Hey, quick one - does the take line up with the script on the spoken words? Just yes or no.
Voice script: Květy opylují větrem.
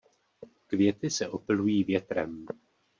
no